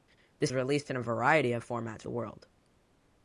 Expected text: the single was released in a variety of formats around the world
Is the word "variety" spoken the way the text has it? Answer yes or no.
yes